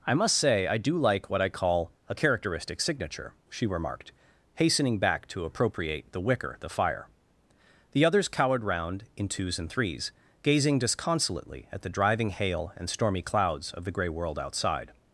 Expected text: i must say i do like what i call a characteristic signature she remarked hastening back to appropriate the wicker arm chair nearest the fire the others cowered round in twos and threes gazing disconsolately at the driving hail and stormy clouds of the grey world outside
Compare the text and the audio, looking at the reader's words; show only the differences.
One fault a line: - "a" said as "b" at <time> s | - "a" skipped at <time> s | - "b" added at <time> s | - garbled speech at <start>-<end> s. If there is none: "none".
- "arm chair nearest" skipped at 6.6 s